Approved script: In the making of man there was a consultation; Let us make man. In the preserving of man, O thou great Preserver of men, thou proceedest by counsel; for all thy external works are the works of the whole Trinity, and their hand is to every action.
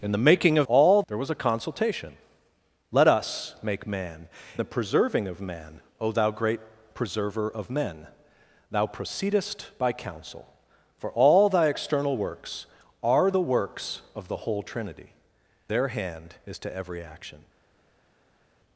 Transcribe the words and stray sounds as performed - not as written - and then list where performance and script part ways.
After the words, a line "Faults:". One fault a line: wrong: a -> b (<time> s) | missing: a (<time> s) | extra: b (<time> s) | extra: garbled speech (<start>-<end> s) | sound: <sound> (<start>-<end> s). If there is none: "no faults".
In the making of all there was a consultation; Let us make man. The preserving of man, O thou great Preserver of men, thou proceedest by counsel; for all thy external works are the works of the whole Trinity, their hand is to every action.
Faults:
wrong: man -> all (0.6 s)
missing: In (4.3 s)
missing: and (15.1 s)